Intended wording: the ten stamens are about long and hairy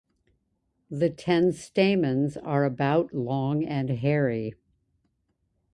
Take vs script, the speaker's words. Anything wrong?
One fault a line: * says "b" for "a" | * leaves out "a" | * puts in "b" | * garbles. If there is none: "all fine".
all fine